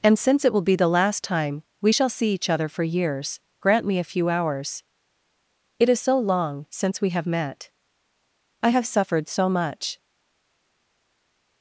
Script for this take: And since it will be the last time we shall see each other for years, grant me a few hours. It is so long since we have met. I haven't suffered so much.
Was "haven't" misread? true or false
true